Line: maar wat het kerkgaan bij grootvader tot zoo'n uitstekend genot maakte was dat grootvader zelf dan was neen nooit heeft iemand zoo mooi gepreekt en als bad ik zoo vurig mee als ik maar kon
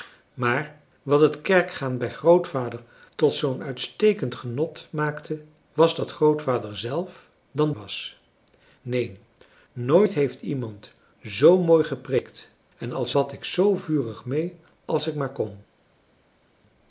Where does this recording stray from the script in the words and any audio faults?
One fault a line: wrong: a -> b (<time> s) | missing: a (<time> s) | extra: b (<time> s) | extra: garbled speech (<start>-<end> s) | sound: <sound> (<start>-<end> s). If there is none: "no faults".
no faults